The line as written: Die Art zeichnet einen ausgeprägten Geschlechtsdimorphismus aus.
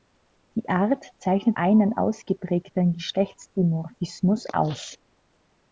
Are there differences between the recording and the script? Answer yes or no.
no